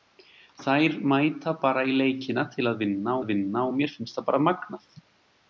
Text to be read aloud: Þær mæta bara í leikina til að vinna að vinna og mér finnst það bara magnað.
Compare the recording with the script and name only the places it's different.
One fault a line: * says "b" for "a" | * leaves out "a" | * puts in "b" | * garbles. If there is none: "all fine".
all fine